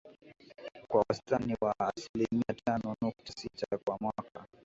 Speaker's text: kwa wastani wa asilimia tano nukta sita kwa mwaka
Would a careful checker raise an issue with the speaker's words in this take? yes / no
no